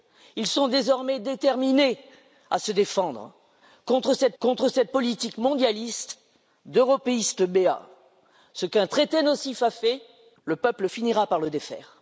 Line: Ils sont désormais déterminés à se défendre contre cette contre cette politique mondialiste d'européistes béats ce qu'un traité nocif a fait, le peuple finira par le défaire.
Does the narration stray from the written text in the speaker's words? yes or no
no